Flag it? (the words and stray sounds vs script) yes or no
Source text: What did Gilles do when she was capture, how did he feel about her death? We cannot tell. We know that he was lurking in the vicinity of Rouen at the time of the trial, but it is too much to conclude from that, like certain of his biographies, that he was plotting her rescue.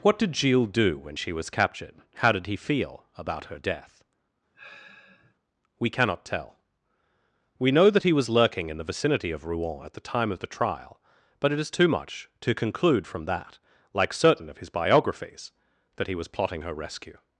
yes